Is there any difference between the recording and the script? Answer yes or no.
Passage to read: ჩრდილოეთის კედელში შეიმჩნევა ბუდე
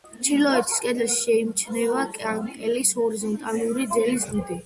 yes